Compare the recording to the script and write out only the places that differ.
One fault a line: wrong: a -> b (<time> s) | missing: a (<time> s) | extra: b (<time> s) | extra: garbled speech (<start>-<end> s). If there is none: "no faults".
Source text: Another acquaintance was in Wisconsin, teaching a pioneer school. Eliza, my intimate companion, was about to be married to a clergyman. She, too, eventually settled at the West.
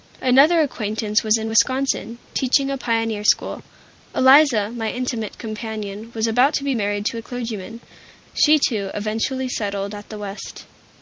no faults